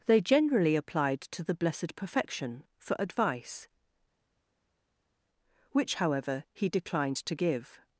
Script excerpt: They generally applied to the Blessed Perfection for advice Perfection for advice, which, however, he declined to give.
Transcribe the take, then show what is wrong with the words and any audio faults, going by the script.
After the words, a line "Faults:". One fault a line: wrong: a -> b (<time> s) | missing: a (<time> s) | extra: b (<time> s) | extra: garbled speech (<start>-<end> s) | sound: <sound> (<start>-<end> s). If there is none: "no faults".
They generally applied to the Blessed Perfection for advice, which, however, he declined to give.
Faults:
missing: Perfection for advice (3.7 s)